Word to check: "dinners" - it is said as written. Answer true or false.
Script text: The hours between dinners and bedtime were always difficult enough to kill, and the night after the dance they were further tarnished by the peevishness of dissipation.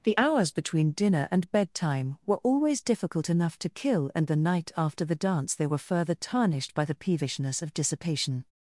false